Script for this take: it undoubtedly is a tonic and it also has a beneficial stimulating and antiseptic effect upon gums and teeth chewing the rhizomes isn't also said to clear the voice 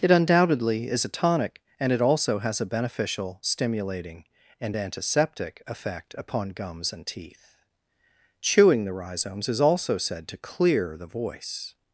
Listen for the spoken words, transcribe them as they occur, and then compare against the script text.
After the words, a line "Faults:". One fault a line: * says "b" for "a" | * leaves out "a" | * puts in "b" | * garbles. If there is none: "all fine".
it undoubtedly is a tonic and it also has a beneficial stimulating and antiseptic effect upon gums and teeth chewing the rhizomes is also said to clear the voice
Faults:
* says "is" for "isn't"